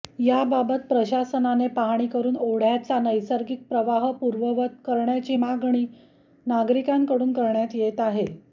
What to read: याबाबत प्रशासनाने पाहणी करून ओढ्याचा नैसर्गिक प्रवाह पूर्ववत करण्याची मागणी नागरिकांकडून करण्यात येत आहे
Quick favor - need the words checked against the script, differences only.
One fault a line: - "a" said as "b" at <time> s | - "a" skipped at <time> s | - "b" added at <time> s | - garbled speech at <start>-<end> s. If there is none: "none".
none